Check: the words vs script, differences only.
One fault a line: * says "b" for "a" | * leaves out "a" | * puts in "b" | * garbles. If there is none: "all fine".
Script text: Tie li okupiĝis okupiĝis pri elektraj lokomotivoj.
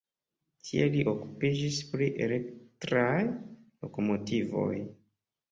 * leaves out "okupiĝis"